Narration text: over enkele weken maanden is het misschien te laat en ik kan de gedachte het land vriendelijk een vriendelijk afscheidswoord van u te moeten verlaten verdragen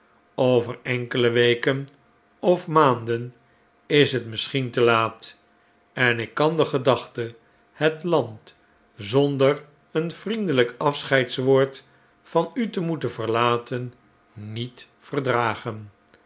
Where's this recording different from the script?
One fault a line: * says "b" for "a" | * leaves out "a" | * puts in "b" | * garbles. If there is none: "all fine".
* puts in "of"
* says "zonder" for "vriendelijk"
* puts in "niet"